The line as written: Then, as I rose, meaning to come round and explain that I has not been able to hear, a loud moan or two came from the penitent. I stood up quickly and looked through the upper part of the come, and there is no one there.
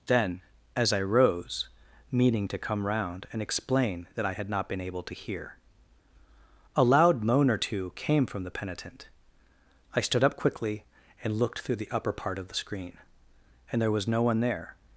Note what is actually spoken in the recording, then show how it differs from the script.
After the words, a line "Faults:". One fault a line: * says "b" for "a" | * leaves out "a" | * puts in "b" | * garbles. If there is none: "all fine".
Then, as I rose, meaning to come round and explain that I had not been able to hear, a loud moan or two came from the penitent. I stood up quickly and looked through the upper part of the screen, and there was no one there.
Faults:
* says "had" for "has"
* says "screen" for "come"
* says "was" for "is"